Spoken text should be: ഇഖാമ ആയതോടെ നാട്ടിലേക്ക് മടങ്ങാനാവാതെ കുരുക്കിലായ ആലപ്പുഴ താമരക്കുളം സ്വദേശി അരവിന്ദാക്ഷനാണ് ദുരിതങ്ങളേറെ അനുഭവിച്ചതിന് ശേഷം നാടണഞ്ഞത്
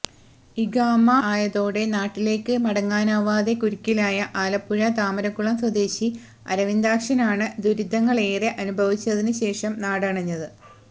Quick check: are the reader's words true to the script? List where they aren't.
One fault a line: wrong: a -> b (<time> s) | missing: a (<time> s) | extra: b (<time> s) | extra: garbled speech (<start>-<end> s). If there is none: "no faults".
no faults